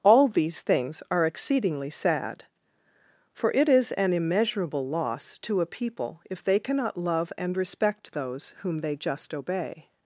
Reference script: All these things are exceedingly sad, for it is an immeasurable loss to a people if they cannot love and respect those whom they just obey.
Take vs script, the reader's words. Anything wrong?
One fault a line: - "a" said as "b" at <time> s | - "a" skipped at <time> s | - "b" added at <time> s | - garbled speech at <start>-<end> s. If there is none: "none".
none